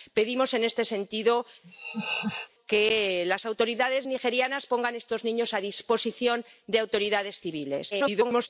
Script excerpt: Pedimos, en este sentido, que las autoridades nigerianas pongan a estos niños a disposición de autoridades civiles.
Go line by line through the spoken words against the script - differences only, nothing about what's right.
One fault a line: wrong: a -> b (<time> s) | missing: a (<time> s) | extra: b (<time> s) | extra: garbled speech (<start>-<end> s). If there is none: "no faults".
extra: garbled speech (7.9-8.5 s)